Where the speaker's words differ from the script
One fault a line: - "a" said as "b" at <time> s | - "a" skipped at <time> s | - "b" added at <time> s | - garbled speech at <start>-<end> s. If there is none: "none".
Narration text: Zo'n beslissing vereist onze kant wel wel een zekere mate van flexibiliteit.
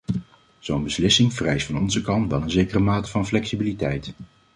- "van" added at 1.6 s
- "wel" skipped at 2.4 s